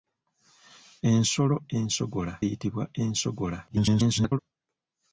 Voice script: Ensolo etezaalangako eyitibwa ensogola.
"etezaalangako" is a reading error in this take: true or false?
true